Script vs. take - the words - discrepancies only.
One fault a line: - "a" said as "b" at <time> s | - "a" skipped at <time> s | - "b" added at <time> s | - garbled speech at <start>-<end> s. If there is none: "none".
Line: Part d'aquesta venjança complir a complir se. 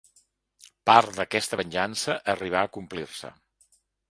- "complir" said as "arribà" at 2.3 s